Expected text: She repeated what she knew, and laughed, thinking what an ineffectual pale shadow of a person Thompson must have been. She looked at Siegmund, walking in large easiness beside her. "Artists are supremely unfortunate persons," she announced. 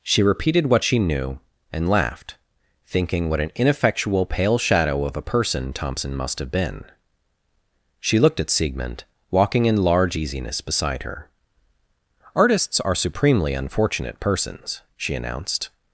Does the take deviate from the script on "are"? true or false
false